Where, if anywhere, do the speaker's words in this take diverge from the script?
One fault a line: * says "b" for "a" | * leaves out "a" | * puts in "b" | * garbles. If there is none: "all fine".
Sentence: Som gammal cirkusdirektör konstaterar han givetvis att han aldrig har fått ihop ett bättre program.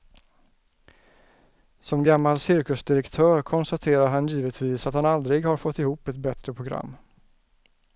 all fine